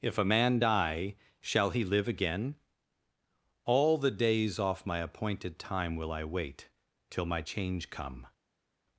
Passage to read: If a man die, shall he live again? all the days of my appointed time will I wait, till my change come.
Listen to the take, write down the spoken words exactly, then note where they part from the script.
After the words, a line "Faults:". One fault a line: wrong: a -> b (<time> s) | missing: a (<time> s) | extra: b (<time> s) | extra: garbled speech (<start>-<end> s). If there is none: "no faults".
If a man die, shall he live again? all the days off my appointed time will I wait, till my change come.
Faults:
wrong: of -> off (4.6 s)